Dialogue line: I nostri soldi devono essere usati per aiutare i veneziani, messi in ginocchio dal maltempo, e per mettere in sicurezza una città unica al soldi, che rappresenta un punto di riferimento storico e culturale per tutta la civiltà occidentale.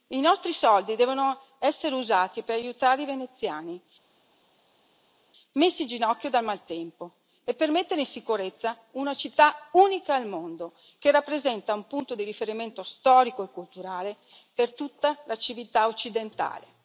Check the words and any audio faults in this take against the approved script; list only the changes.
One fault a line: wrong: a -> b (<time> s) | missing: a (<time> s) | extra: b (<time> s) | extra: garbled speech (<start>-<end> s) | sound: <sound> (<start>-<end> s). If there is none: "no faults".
wrong: soldi -> mondo (10.3 s)